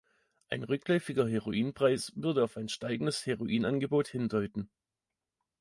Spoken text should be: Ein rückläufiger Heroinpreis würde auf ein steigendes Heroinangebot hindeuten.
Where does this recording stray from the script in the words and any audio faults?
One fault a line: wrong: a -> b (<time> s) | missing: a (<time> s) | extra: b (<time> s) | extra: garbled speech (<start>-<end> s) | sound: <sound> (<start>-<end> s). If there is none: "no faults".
no faults